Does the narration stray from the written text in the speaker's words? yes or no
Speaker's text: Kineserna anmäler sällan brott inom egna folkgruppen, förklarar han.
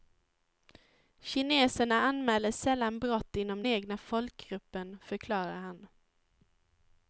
no